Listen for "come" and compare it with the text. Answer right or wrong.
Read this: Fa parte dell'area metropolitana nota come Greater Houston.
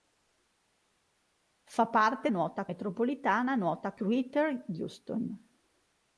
wrong